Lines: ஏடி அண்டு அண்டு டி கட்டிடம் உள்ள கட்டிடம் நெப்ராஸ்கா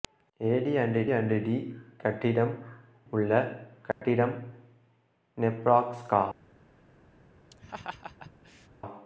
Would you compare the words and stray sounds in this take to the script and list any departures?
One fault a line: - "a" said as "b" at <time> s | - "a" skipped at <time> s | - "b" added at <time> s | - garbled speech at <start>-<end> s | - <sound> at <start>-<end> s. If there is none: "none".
- dropout at 3.9-4.0 s
- laugh at 7.5-8.7 s